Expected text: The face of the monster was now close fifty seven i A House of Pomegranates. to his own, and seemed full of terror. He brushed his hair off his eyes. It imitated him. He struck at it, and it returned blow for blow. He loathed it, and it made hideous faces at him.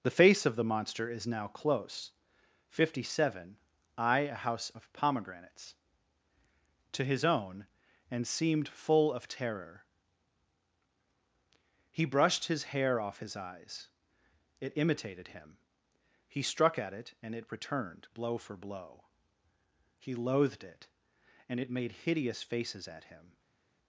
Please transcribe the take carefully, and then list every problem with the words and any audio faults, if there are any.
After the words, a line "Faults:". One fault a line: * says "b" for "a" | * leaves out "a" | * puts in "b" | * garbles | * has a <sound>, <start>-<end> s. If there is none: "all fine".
The face of the monster is now close fifty seven i A House of Pomegranates. to his own, and seemed full of terror. He brushed his hair off his eyes. It imitated him. He struck at it, and it returned blow for blow. He loathed it, and it made hideous faces at him.
Faults:
* says "is" for "was"